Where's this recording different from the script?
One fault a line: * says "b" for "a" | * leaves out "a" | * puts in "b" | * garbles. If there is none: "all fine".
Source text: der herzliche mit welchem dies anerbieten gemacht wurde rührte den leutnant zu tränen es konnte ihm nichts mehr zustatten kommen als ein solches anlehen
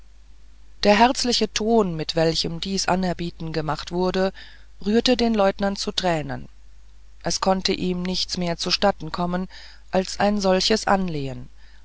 * puts in "ton"